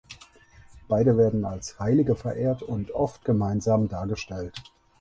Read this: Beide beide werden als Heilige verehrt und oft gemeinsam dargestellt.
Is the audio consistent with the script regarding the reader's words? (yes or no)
no